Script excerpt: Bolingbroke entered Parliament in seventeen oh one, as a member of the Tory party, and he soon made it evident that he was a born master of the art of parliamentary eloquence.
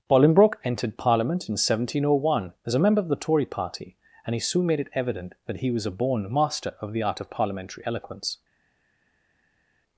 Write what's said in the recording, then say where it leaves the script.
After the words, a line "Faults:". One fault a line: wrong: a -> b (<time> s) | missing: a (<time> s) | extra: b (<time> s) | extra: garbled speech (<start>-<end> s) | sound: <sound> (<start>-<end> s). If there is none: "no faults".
Bolingbroke entered Parliament in seventeen oh one, as a member of the Tory party, and he soon made it evident that he was a born master of the art of parliamentary eloquence.
Faults:
no faults